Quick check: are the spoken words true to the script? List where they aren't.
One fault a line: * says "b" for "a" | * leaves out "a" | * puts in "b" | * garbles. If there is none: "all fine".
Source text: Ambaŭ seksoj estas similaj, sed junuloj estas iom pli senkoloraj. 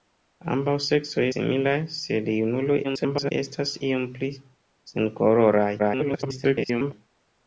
* leaves out "estas"
* garbles
* garbles